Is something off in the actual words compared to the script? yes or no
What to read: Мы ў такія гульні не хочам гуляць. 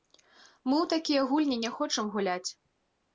no